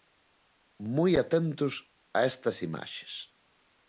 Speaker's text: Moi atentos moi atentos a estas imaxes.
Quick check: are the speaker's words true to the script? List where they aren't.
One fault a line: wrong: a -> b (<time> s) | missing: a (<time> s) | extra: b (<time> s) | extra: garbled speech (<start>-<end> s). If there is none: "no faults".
missing: moi atentos (1.7 s)